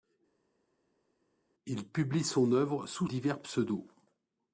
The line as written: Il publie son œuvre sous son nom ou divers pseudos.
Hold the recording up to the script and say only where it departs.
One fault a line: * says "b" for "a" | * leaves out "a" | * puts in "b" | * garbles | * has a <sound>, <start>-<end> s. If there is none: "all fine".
* leaves out "son nom ou"